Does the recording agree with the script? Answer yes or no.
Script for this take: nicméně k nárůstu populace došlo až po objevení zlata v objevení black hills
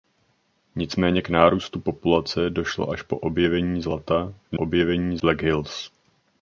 yes